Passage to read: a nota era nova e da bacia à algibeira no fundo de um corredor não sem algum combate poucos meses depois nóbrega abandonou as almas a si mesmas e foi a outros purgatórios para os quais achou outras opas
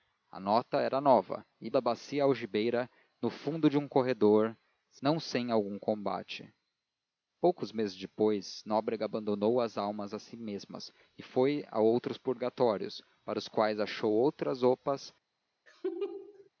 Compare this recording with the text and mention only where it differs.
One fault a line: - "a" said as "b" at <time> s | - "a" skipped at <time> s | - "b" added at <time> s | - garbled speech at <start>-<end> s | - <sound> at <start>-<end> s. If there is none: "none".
- laugh at 15.7-16.5 s